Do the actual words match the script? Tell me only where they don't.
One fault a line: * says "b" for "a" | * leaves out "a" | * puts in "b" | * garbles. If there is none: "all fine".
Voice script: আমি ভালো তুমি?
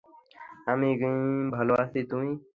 * puts in "আছি"